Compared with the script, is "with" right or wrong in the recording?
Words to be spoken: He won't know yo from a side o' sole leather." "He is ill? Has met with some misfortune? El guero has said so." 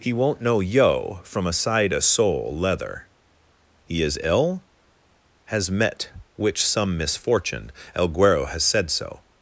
wrong